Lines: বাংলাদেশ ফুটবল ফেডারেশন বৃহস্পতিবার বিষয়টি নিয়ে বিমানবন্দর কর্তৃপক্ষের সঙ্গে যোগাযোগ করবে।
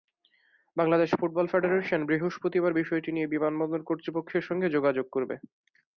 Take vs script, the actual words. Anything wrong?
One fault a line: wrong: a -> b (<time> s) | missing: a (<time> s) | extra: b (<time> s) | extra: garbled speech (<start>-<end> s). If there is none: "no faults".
no faults